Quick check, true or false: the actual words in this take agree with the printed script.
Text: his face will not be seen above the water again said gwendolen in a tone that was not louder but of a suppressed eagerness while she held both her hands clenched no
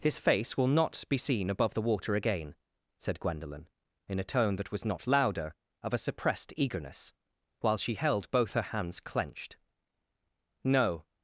false